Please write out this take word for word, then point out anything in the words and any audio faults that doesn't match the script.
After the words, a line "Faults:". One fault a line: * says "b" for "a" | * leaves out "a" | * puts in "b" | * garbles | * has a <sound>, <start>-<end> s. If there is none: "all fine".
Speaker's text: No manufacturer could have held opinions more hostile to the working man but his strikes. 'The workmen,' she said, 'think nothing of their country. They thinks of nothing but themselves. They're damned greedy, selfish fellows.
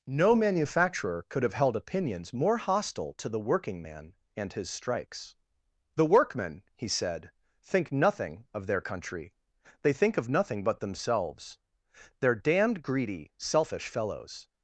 No manufacturer could have held opinions more hostile to the working man and his strikes. 'The workmen,' he said, 'think nothing of their country. They think of nothing but themselves. They're damned greedy, selfish fellows.
Faults:
* says "and" for "but"
* says "he" for "she"
* says "think" for "thinks"